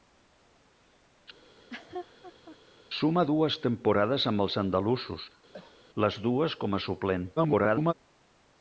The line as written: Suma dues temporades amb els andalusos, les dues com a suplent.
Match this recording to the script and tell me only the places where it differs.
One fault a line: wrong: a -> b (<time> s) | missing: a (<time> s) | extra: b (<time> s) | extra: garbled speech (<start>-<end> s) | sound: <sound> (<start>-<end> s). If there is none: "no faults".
sound: laugh (1.4-2.6 s)
sound: cough (5.5-5.8 s)
extra: garbled speech (7.4-7.9 s)